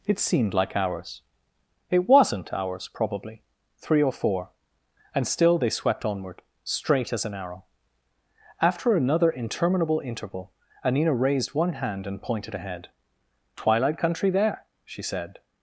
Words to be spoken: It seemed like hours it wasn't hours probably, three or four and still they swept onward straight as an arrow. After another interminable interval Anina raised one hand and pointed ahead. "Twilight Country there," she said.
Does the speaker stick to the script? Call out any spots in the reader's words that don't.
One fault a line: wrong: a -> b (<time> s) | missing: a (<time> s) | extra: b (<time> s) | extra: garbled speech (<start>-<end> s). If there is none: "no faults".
no faults